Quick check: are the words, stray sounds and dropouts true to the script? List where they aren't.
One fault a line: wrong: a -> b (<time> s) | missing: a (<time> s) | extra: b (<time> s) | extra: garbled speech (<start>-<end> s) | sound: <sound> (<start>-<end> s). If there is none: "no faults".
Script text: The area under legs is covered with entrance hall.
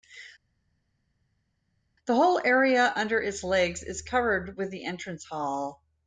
extra: whole (2.2 s)
extra: its (3.2 s)
extra: the (4.7 s)